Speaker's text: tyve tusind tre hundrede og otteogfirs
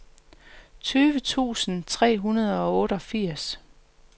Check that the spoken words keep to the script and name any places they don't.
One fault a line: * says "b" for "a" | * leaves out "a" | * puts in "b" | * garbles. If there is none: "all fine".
all fine